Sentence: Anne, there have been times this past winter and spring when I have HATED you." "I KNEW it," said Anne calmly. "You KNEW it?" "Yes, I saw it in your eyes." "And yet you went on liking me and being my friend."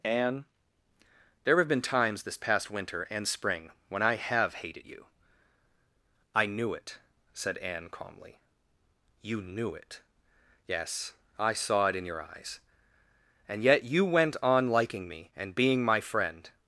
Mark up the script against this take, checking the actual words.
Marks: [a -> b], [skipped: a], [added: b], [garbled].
Anne, there have been times this past winter and spring when I have HATED you." "I KNEW it," said Anne calmly. "You KNEW it?" "Yes, I saw it in your eyes." "And yet you went on liking me and being my friend."